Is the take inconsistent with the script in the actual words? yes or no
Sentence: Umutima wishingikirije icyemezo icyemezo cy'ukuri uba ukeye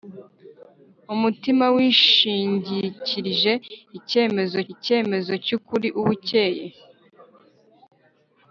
no